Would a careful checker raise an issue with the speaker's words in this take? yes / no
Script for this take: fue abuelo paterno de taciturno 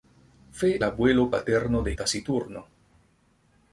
no